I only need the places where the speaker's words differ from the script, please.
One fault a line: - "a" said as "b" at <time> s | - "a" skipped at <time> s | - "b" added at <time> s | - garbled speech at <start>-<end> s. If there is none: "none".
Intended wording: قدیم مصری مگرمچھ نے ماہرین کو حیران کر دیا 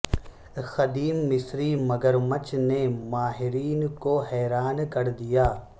none